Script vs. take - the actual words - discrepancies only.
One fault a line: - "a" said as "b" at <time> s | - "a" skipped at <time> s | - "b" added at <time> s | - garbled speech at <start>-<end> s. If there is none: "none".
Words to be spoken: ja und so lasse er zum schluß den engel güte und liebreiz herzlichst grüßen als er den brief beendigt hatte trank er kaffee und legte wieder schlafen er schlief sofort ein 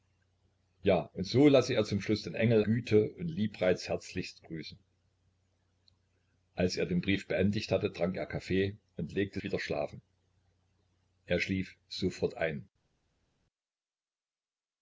none